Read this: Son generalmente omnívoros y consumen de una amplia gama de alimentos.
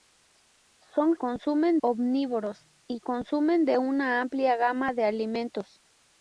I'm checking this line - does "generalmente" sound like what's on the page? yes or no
no